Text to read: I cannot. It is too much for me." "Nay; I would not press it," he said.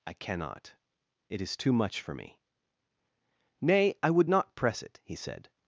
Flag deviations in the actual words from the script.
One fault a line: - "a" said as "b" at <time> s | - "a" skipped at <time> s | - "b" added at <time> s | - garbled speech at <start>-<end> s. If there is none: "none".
none